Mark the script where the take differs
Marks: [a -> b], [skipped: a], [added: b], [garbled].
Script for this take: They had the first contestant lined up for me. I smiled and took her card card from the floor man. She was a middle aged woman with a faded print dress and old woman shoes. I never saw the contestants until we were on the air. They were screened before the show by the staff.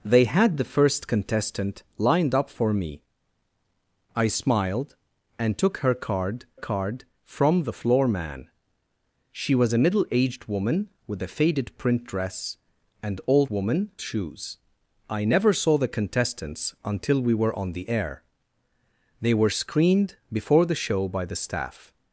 They had the first contestant lined up for me. I smiled and took her card card from the floor man. She was a middle aged woman with a faded print dress and old woman shoes. I never saw the contestants until we were on the air. They were screened before the show by the staff.